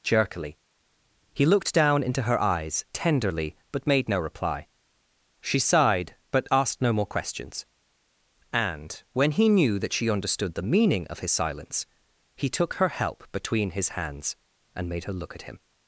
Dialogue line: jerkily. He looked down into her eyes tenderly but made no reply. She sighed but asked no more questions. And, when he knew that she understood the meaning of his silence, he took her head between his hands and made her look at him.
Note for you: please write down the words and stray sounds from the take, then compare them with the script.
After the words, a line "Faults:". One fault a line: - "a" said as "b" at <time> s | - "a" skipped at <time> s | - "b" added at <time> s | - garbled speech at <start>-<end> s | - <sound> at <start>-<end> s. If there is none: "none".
jerkily. He looked down into her eyes tenderly but made no reply. She sighed but asked no more questions. And, when he knew that she understood the meaning of his silence, he took her help between his hands and made her look at him.
Faults:
- "head" said as "help" at 12.9 s